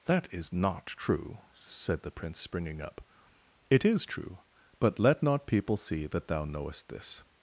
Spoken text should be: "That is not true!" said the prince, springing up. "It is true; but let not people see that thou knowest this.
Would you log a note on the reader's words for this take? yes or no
no